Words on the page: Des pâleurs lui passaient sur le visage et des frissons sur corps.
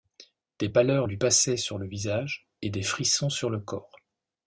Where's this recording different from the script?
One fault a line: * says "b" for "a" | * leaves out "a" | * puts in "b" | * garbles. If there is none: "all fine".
* puts in "le"